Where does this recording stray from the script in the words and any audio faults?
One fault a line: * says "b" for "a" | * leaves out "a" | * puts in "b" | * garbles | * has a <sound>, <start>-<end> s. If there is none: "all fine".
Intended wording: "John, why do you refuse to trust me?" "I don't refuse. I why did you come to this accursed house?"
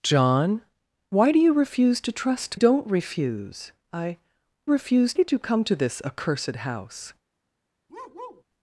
* leaves out "me I"
* says "refuse" for "why"
* has a bark, 7.9-8.4 s